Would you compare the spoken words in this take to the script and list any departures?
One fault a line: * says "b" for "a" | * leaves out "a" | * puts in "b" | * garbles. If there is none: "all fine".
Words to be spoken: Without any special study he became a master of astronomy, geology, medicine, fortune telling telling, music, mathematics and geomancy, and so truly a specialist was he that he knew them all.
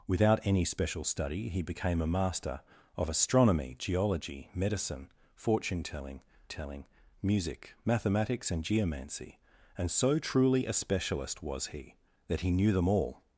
all fine